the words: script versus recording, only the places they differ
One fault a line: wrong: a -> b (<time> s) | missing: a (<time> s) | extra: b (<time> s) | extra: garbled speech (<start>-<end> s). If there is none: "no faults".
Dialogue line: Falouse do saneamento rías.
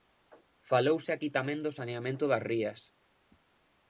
extra: aquí tamén (1.1 s)
extra: das (2.3 s)